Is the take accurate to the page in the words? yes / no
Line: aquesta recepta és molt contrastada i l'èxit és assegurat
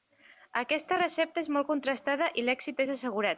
yes